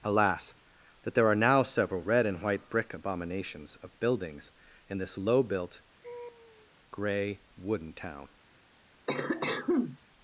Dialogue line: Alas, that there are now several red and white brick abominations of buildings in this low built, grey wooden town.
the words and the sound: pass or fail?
fail